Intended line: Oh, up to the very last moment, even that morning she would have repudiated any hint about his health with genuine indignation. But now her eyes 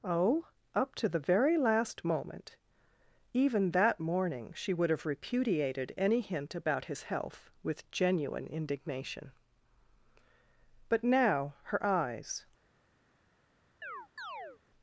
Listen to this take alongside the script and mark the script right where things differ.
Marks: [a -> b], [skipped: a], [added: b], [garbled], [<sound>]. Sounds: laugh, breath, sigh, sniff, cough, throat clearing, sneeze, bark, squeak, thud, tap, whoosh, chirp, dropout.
Oh, up to the very last moment, even that morning she would have repudiated any hint about his health with genuine indignation. But now her eyes [chirp]